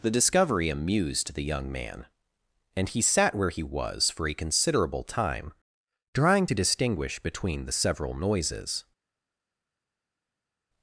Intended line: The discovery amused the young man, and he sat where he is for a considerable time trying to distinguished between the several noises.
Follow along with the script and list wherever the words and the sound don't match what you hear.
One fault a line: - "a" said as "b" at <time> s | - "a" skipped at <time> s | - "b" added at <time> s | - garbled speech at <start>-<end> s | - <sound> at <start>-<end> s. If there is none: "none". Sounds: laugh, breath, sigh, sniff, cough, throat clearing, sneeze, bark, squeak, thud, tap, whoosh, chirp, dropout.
- "is" said as "was" at 3.6 s
- "distinguished" said as "distinguish" at 6.5 s